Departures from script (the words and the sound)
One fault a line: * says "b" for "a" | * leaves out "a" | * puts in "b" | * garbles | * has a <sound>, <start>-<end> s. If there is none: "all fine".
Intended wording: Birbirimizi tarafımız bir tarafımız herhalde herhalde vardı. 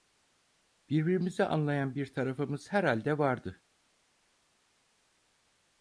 * says "anlayan" for "tarafımız"
* leaves out "herhalde"